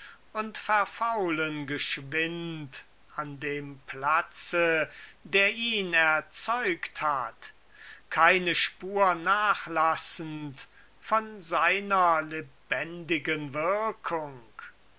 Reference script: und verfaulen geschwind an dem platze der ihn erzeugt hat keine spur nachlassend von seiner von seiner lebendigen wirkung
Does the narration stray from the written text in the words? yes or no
yes